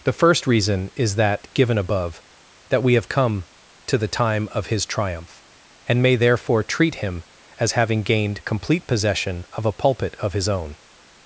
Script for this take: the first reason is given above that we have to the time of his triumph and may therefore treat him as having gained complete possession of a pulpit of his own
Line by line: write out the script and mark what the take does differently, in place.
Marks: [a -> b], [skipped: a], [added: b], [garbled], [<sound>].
the first reason is [added: that] given above that we have [added: come] to the time of his triumph and may therefore treat him as having gained complete possession of a pulpit of his own